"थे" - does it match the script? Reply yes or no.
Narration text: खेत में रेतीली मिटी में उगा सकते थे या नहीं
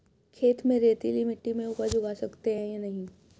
no